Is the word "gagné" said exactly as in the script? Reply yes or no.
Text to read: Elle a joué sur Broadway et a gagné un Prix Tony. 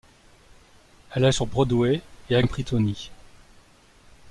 no